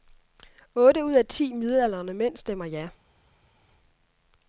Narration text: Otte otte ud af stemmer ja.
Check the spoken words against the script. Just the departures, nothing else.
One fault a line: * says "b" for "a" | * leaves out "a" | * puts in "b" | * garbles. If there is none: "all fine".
* leaves out "otte"
* puts in "ti midaldrende mænd"